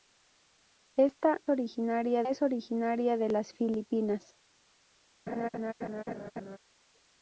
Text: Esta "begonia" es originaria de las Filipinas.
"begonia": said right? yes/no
no